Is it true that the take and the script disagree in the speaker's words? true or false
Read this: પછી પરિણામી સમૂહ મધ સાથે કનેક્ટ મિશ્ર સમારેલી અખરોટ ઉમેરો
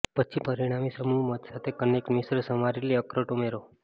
false